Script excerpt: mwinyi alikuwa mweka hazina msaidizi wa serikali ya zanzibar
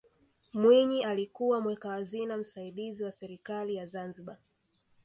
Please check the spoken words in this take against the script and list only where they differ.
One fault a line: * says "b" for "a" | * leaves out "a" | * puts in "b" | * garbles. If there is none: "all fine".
all fine